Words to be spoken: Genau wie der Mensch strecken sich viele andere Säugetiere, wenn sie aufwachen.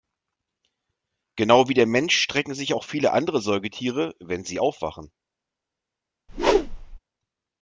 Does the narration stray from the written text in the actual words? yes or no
yes